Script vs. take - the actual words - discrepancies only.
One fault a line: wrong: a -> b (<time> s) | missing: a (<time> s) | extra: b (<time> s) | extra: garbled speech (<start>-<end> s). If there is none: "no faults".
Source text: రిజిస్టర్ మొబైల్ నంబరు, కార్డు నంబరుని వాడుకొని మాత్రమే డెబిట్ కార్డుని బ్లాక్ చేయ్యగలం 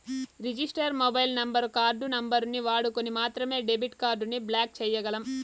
no faults